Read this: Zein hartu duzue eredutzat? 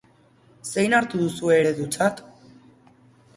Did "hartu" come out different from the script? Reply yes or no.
no